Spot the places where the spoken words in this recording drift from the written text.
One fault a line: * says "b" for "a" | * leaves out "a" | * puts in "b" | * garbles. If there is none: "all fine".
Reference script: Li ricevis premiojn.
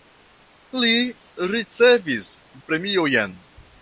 all fine